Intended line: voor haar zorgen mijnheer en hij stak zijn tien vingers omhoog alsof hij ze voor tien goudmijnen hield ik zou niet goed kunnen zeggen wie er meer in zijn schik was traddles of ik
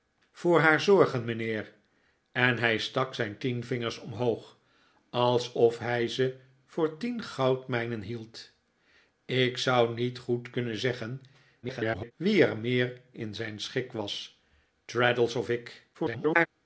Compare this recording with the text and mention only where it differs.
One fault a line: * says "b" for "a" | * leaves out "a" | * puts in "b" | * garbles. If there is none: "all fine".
* garbles
* garbles